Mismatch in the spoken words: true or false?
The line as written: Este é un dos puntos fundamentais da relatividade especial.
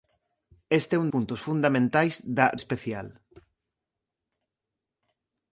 true